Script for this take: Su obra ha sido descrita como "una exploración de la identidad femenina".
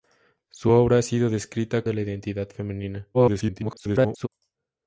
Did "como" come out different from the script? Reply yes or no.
yes